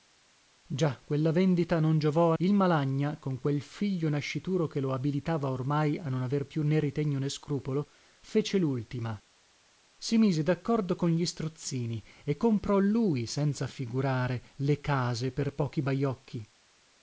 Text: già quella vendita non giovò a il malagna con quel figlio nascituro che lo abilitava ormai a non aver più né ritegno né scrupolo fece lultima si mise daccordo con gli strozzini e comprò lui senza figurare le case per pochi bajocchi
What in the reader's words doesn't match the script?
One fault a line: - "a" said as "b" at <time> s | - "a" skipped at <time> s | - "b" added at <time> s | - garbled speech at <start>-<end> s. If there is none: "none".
none